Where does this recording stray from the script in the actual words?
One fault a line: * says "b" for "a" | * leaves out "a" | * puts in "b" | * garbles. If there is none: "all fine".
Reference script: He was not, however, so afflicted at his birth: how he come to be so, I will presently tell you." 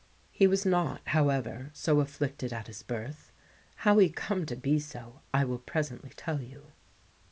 all fine